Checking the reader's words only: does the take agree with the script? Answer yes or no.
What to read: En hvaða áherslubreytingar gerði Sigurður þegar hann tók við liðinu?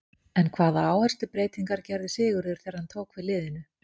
yes